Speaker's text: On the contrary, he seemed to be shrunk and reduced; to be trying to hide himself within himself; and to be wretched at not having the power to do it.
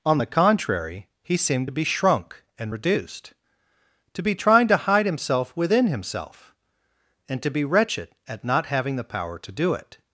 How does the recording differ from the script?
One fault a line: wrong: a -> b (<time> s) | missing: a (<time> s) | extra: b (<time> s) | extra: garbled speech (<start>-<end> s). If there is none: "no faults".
no faults